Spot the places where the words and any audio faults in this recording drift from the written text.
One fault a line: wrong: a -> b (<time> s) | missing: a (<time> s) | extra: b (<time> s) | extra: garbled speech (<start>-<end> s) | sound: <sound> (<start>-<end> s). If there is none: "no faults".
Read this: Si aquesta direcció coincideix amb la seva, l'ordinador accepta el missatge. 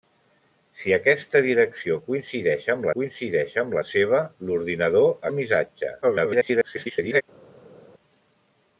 extra: coincideix amb (2.9 s)
missing: accepta (5.1 s)
extra: garbled speech (6.0-7.2 s)